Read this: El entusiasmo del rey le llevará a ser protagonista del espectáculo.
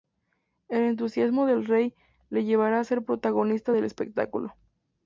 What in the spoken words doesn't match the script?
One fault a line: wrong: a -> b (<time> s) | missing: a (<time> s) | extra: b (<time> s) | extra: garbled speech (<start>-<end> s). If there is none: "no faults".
no faults